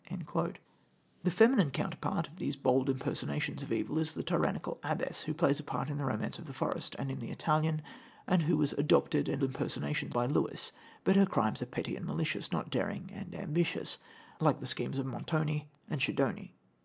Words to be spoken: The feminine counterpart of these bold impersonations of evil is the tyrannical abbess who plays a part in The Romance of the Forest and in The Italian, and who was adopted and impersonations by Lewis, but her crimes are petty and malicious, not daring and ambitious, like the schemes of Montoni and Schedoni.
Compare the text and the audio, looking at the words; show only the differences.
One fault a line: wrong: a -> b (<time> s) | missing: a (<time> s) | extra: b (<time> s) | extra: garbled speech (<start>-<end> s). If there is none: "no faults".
no faults